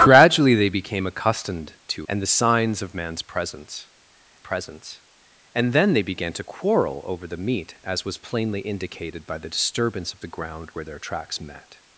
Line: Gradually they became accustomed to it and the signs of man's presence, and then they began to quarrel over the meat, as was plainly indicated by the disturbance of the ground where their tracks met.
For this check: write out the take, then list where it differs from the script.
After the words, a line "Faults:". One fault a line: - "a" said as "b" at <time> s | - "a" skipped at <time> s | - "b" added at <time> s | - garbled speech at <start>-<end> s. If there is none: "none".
Gradually they became accustomed to and the signs of man's presence presence, and then they began to quarrel over the meat, as was plainly indicated by the disturbance of the ground where their tracks met.
Faults:
- "it" skipped at 2.1 s
- "presence" added at 4.4 s